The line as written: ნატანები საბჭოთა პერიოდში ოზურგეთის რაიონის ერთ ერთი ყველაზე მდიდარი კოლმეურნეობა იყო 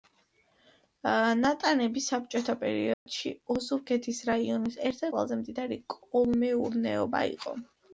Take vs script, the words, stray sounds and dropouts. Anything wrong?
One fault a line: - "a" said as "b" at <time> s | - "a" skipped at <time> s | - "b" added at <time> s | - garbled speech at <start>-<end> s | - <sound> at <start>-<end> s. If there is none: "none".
- dropout at 2.9-3.1 s
- "ერთი" skipped at 5.1 s